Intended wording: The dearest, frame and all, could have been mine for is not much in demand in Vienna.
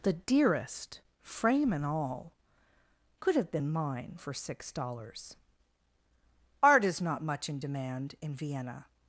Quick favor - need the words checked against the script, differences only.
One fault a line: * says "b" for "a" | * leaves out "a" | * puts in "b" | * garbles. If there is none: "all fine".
* puts in "six dollars Art"